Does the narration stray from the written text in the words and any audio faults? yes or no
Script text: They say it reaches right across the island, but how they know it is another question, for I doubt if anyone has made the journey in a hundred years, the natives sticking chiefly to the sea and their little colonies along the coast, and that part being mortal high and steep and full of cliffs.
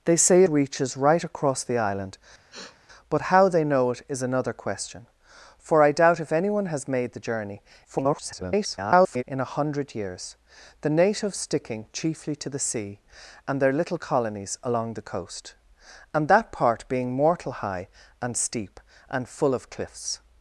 yes